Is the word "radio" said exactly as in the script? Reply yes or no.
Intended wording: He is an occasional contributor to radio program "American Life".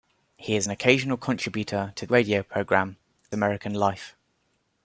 yes